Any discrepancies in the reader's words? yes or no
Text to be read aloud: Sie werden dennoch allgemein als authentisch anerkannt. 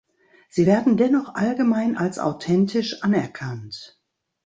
no